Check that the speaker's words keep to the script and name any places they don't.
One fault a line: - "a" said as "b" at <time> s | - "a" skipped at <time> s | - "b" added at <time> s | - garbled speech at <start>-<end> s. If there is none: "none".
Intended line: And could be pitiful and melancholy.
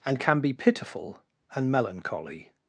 - "could" said as "can" at 0.2 s